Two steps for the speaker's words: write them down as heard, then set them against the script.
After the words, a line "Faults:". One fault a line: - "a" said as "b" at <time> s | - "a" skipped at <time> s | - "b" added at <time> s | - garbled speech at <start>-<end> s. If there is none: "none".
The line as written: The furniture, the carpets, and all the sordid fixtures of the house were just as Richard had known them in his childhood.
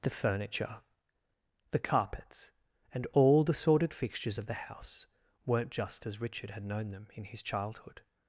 The furniture, the carpets, and all the sordid fixtures of the house weren't just as Richard had known them in his childhood.
Faults:
- "were" said as "weren't" at 5.5 s